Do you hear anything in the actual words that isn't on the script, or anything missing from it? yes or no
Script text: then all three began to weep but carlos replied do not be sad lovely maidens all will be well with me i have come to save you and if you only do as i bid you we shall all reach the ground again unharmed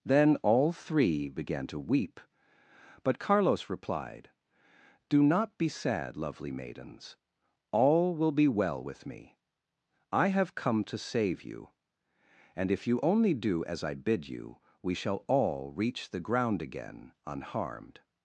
no